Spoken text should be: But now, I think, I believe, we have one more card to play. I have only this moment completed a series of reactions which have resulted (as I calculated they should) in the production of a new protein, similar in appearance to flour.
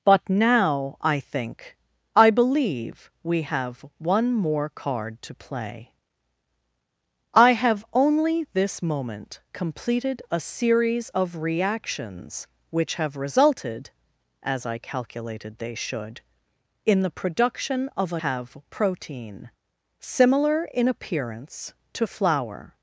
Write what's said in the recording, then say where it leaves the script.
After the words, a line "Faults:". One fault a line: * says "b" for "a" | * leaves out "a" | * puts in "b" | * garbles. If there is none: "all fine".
But now, I think, I believe, we have one more card to play. I have only this moment completed a series of reactions which have resulted (as I calculated they should) in the production of a have protein, similar in appearance to flour.
Faults:
* says "have" for "new"